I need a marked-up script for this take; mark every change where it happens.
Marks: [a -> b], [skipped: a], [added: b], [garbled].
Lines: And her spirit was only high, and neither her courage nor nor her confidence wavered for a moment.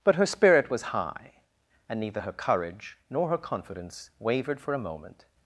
[And -> But] her spirit was [skipped: only] high, and neither her courage nor [skipped: nor] her confidence wavered for a moment.